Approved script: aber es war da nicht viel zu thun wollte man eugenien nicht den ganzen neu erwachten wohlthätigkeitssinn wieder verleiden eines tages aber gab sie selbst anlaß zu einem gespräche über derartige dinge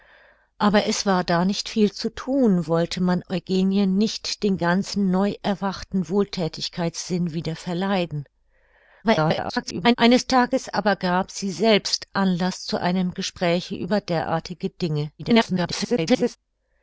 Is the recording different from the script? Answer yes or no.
yes